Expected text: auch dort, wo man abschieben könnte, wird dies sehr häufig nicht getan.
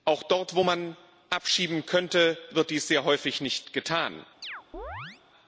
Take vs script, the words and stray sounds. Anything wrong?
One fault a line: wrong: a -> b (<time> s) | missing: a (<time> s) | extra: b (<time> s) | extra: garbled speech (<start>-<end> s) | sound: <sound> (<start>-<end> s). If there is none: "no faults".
sound: chirp (4.4-5.2 s)